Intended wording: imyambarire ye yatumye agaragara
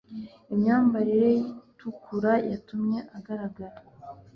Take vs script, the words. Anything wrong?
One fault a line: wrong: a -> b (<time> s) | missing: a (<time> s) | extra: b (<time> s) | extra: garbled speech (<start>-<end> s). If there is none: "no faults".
extra: itukura (1.7 s)